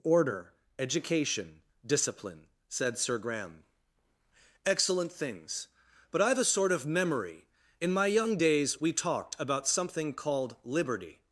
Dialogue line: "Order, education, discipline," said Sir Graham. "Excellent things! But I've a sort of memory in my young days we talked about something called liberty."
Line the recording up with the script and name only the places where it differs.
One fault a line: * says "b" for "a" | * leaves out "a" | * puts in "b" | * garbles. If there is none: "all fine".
all fine